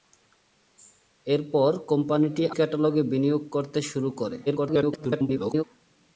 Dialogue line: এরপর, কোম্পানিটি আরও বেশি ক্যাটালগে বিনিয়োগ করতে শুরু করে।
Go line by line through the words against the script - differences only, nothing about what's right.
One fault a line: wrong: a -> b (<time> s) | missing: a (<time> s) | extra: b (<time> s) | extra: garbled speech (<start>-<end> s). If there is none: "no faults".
missing: আরও বেশি (2.4 s)
extra: garbled speech (4.5-5.6 s)